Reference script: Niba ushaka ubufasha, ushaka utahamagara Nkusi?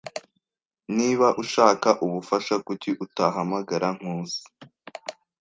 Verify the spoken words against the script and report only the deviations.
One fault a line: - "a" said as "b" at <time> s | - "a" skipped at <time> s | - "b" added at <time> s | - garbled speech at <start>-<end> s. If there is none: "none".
- "ushaka" said as "kuki" at 2.7 s